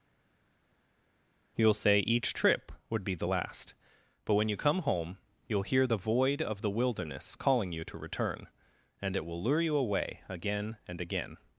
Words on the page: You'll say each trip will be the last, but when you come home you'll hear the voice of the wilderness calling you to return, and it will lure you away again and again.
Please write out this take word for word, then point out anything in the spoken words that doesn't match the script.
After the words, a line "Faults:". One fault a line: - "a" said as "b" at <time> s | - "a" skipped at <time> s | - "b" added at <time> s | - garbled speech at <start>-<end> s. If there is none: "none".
You'll say each trip would be the last, but when you come home you'll hear the void of the wilderness calling you to return, and it will lure you away again and again.
Faults:
- "will" said as "would" at 2.9 s
- "voice" said as "void" at 6.0 s